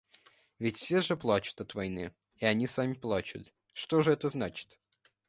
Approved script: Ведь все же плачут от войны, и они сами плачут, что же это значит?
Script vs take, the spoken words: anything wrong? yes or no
no